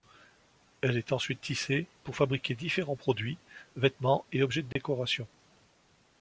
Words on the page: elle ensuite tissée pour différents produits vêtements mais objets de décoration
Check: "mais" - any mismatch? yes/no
yes